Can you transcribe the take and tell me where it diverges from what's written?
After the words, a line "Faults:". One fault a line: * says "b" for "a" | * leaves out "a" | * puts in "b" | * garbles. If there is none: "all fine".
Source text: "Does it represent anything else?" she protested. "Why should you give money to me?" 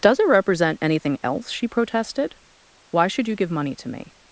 "Does it represent anything else?" she protested. "Why should you give money to me?"
Faults:
all fine